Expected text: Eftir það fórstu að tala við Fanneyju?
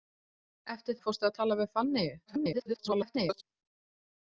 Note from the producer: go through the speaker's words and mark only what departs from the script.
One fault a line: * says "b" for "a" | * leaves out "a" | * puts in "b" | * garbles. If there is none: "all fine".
* leaves out "það"
* garbles